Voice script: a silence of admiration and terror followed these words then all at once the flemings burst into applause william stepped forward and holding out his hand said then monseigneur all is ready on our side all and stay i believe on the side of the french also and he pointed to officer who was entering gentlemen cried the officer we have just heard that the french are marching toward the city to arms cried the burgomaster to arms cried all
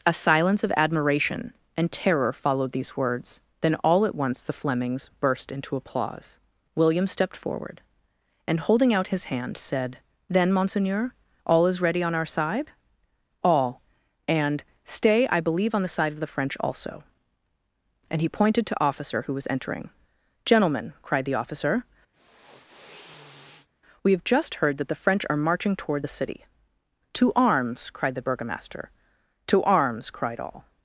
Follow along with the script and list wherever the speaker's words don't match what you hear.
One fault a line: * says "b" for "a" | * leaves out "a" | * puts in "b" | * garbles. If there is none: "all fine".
all fine